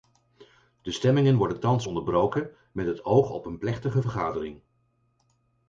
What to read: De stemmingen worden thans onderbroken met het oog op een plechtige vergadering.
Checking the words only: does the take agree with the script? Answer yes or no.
yes